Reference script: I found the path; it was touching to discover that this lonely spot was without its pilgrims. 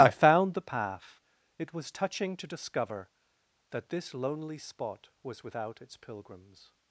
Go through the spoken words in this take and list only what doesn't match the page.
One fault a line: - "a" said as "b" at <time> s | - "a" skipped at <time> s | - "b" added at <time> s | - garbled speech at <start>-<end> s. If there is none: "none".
none